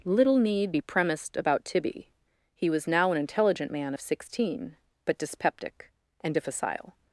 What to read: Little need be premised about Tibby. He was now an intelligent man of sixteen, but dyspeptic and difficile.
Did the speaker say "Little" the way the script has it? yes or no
yes